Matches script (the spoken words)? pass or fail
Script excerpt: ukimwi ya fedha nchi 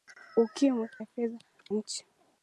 pass